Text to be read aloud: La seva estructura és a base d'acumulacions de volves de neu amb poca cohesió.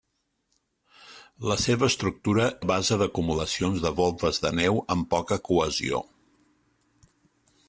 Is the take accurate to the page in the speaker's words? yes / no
no